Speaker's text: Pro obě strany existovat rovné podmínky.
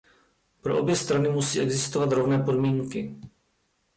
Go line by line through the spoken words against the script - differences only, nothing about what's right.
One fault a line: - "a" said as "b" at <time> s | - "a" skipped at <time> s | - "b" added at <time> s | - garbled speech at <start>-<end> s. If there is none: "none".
- "musí" added at 1.3 s